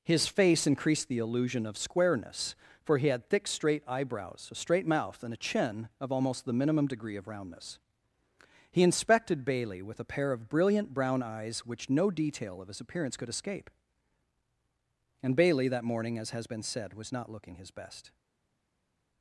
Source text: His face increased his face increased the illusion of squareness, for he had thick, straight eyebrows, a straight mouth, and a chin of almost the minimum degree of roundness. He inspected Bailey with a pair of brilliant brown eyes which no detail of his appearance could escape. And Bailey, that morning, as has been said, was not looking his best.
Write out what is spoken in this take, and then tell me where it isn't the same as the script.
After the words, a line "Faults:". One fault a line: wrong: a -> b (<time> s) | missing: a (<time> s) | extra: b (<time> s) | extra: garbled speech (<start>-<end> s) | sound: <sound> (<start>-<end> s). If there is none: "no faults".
His face increased the illusion of squareness, for he had thick, straight eyebrows, a straight mouth, and a chin of almost the minimum degree of roundness. He inspected Bailey with a pair of brilliant brown eyes which no detail of his appearance could escape. And Bailey, that morning, as has been said, was not looking his best.
Faults:
missing: his face increased (1.1 s)